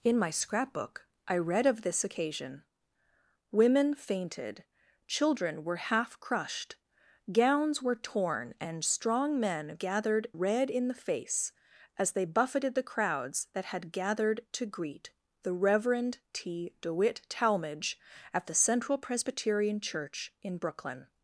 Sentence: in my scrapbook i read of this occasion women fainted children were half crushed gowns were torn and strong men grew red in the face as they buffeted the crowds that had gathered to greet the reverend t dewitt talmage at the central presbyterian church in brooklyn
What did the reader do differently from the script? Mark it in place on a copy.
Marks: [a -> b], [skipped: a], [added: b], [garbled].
in my scrapbook i read of this occasion women fainted children were half crushed gowns were torn and strong men [grew -> gathered] red in the face as they buffeted the crowds that had gathered to greet the reverend t dewitt talmage at the central presbyterian church in brooklyn